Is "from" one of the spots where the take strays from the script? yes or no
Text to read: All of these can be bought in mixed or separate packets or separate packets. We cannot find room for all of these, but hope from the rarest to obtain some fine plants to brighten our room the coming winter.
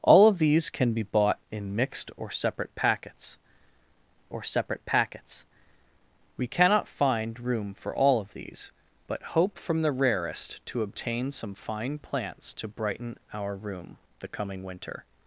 no